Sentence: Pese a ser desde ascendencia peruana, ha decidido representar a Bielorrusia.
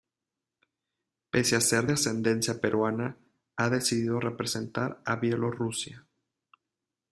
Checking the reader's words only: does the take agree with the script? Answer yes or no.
no